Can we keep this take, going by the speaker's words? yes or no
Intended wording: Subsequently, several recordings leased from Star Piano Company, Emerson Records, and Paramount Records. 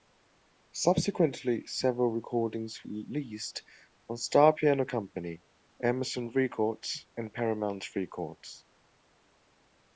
yes